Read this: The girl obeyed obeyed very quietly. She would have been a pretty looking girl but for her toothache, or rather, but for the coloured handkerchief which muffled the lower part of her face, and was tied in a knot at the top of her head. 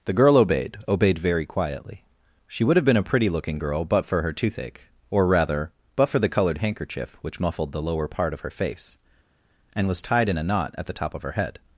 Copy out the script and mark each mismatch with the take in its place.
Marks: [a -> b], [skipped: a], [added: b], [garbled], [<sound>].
The girl obeyed obeyed very quietly. She would have been a pretty looking girl but for her toothache, or rather, but for the coloured handkerchief which muffled the lower part of her face, and was tied in a knot at the top of her head.